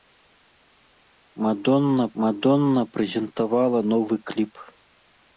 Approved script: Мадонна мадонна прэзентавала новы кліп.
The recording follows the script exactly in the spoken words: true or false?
true